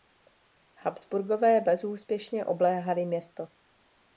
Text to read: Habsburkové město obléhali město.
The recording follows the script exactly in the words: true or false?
false